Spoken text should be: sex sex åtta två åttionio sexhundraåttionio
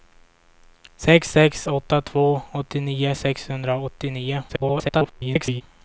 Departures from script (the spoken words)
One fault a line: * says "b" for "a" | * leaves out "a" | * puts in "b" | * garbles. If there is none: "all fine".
* garbles